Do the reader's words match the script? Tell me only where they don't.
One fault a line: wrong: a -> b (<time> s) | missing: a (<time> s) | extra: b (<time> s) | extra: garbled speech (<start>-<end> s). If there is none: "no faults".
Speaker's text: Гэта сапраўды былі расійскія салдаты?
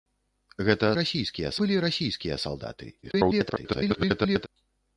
wrong: сапраўды -> расійскія (1.0 s)
extra: garbled speech (3.0-4.5 s)